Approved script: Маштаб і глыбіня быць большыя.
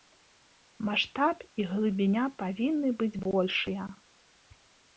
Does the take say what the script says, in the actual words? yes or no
no